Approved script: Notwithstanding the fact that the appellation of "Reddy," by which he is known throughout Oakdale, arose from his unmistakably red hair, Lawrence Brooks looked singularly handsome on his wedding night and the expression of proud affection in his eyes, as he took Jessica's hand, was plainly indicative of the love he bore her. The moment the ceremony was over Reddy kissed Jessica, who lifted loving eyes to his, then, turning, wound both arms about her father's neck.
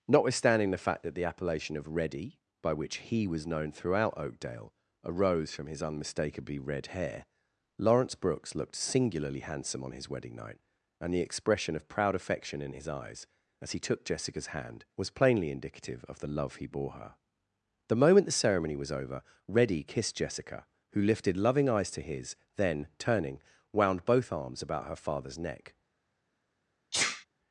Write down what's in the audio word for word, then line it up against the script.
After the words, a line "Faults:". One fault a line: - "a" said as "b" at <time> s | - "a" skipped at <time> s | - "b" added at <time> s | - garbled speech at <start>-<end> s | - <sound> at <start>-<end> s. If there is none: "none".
Notwithstanding the fact that the appellation of "Reddy," by which he was known throughout Oakdale, arose from his unmistakably red hair, Lawrence Brooks looked singularly handsome on his wedding night and the expression of proud affection in his eyes, as he took Jessica's hand, was plainly indicative of the love he bore her. The moment the ceremony was over Reddy kissed Jessica, who lifted loving eyes to his, then, turning, wound both arms about her father's neck.
Faults:
- "is" said as "was" at 3.3 s
- sneeze at 26.9-27.3 s